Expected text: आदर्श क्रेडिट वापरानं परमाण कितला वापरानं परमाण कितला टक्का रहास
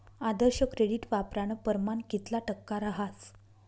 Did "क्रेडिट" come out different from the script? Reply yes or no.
no